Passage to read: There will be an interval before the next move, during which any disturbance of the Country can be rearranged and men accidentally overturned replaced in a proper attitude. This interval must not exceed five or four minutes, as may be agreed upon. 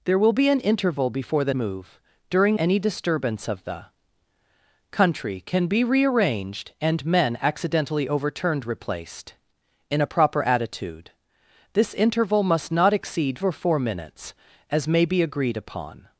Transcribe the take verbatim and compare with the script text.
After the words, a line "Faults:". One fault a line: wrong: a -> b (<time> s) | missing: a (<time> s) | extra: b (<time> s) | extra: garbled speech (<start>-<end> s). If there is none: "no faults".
There will be an interval before the move, during any disturbance of the Country can be rearranged and men accidentally overturned replaced in a proper attitude. This interval must not exceed or four minutes, as may be agreed upon.
Faults:
missing: next (1.5 s)
missing: which (2.6 s)
missing: five (13.4 s)